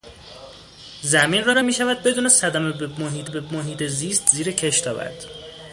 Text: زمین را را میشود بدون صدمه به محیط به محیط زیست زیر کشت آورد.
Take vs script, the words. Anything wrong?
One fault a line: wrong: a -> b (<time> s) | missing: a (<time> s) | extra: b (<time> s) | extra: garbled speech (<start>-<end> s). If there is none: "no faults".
no faults